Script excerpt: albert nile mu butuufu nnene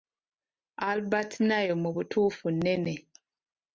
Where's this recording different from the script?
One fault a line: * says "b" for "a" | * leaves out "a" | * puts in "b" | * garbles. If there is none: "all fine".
all fine